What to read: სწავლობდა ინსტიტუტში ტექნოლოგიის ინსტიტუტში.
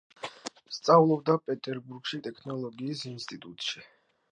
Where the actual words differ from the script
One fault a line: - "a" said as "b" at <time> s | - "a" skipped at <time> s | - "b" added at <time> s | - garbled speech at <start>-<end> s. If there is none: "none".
- "ინსტიტუტში" said as "პეტერბურგში" at 1.5 s